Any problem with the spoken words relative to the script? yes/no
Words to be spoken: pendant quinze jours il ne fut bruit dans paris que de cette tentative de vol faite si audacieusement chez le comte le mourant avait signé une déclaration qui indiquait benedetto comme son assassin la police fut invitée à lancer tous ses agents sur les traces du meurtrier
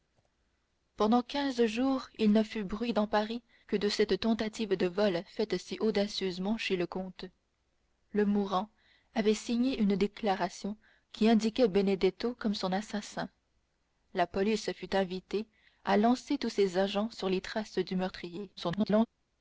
yes